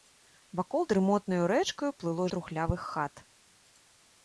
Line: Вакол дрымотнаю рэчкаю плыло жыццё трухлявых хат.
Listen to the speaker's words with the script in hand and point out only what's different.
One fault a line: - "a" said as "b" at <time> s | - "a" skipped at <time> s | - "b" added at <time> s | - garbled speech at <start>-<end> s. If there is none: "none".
- "жыццё" skipped at 2.2 s